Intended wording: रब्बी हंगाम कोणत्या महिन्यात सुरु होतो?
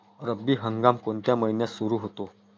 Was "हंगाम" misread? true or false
false